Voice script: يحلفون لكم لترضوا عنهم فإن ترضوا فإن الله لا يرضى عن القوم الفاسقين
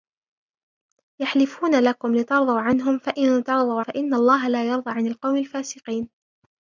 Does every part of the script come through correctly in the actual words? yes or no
yes